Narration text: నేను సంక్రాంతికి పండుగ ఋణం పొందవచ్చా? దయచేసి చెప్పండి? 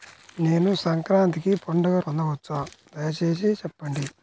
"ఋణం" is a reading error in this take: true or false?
true